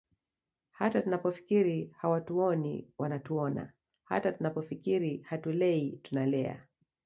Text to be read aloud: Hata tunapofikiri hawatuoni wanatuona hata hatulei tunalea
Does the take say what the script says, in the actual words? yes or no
no